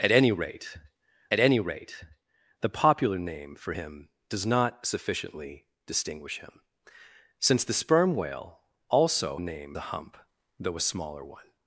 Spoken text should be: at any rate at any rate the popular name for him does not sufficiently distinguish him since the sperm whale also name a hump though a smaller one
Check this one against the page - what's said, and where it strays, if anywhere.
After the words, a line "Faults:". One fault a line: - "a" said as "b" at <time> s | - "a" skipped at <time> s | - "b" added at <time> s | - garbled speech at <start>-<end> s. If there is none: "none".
at any rate at any rate the popular name for him does not sufficiently distinguish him since the sperm whale also name a hump though a smaller one
Faults:
none